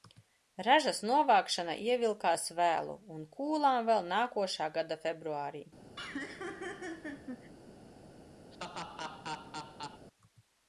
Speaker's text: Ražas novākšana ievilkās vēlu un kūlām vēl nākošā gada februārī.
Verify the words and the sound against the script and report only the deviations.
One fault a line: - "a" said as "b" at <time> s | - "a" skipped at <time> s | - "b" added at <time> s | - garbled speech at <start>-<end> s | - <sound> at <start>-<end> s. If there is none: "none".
- laugh at 6.0-7.5 s
- laugh at 8.5-10.1 s